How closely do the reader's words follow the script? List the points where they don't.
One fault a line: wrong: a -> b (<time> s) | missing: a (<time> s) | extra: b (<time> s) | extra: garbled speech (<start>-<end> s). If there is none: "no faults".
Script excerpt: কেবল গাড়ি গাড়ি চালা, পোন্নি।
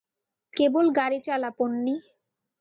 missing: গাড়ি (1.2 s)